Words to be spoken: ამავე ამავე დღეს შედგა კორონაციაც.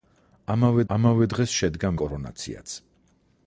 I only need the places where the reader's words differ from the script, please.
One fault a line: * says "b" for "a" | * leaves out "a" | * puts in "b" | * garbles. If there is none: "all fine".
all fine